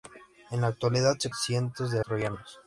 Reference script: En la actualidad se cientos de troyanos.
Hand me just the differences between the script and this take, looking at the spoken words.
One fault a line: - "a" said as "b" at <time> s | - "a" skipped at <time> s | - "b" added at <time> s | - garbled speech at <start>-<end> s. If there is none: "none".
none